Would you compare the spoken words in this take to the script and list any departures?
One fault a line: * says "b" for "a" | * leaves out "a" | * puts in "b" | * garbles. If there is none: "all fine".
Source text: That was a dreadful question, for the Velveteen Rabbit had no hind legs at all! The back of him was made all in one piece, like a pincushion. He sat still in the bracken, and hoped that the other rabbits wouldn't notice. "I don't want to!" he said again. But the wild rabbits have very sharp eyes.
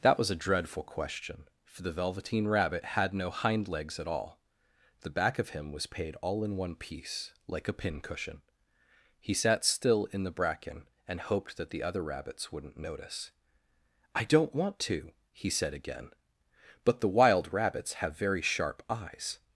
* says "paid" for "made"